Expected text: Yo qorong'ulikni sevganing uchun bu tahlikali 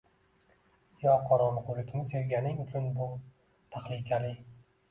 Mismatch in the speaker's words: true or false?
false